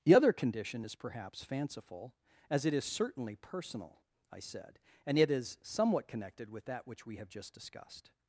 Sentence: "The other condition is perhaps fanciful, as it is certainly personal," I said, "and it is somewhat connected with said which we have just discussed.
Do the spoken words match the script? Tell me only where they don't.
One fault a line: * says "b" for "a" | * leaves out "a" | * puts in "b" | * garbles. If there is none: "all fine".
* says "that" for "said"